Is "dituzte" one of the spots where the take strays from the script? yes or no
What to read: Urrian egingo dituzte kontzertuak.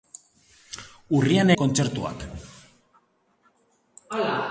yes